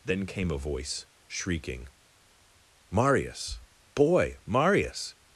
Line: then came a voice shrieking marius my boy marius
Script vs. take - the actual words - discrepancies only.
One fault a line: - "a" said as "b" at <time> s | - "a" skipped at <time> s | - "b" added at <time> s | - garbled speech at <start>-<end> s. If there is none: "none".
- "my" skipped at 3.6 s